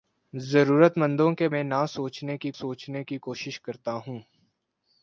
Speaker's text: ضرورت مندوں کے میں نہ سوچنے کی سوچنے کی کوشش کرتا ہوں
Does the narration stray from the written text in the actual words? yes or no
no